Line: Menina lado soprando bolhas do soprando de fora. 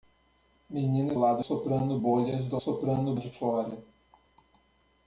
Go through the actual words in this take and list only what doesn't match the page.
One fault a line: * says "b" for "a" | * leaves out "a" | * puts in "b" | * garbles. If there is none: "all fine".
all fine